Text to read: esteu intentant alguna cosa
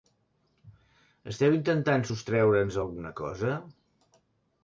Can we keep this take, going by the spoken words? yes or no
no